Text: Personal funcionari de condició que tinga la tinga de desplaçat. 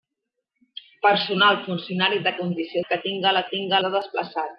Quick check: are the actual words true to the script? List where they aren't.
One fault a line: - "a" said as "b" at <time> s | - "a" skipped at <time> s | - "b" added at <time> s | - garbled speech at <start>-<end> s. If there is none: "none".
none